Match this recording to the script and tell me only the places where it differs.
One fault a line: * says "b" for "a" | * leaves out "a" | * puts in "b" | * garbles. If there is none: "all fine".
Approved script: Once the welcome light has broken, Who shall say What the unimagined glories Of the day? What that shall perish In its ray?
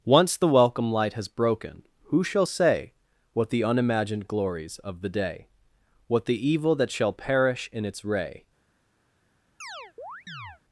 * puts in "the evil"